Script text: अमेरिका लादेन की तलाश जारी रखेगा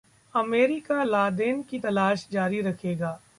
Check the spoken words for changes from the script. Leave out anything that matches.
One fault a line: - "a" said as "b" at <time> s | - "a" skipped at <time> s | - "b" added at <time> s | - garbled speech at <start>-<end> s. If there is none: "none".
none